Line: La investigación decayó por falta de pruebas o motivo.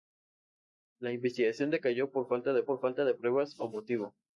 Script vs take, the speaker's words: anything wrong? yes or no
yes